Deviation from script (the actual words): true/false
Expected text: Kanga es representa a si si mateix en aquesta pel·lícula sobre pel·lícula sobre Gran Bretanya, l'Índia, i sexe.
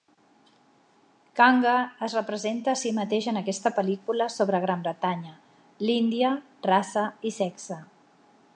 true